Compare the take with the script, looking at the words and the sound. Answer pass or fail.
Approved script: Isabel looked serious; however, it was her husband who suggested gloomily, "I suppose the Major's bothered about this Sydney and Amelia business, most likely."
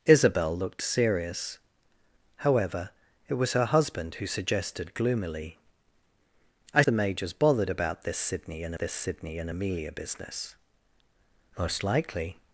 fail